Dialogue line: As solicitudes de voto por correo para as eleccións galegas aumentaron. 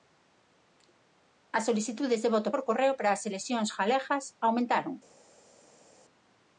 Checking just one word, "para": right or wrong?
right